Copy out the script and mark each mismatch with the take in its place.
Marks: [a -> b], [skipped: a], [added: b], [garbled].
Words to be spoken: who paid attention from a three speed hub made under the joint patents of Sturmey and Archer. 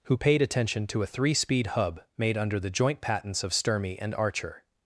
who paid attention [from -> to] a three speed hub made under the joint patents of Sturmey and Archer.